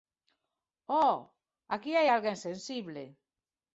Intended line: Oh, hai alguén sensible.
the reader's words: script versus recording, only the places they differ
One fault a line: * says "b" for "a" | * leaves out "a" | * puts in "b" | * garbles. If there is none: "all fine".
* puts in "aquí"